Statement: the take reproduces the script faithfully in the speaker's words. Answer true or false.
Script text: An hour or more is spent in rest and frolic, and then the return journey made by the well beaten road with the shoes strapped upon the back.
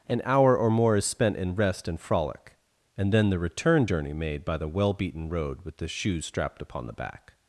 true